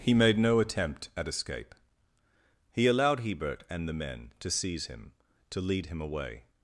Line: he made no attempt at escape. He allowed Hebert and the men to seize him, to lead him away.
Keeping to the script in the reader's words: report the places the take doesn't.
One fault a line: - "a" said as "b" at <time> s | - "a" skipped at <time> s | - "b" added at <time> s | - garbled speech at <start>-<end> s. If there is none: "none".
none